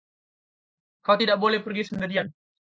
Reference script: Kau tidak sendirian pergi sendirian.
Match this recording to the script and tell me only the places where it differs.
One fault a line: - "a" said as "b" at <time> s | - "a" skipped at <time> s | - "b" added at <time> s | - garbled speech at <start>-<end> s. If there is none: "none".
- "sendirian" said as "boleh" at 1.4 s